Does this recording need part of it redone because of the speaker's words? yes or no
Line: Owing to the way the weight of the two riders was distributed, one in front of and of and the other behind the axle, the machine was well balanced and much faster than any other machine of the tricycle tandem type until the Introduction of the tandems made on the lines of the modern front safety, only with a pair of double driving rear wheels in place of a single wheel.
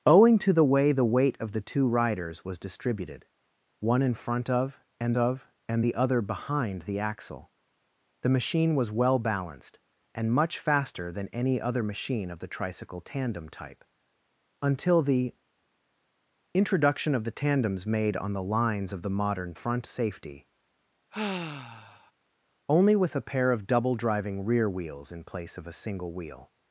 no